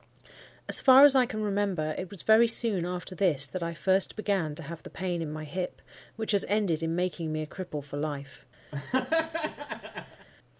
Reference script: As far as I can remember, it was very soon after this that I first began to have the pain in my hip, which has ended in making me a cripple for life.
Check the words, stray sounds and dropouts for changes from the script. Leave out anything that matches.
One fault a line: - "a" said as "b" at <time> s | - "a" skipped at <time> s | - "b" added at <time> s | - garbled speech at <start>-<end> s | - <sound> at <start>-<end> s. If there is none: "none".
- laugh at 8.7-10.3 s